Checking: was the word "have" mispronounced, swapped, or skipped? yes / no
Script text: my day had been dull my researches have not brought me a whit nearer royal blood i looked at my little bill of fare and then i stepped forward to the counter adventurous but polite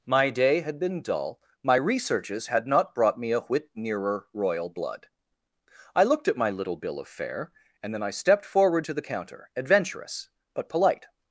yes